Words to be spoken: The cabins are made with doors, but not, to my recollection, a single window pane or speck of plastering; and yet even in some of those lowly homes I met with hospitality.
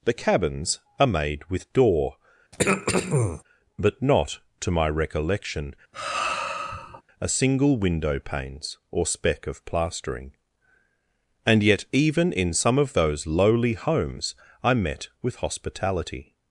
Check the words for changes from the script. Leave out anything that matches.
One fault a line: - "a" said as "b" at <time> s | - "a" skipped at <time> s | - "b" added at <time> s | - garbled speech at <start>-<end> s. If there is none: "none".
- "doors" said as "door" at 1.7 s
- "pane" said as "panes" at 8.2 s